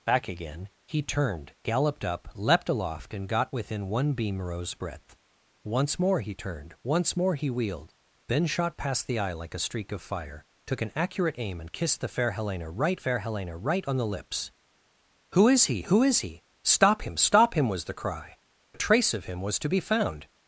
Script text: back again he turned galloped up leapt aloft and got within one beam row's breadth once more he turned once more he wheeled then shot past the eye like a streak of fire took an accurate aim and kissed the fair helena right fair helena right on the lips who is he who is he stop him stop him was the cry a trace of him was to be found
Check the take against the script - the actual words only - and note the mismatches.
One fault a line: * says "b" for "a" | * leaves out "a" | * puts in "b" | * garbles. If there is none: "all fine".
all fine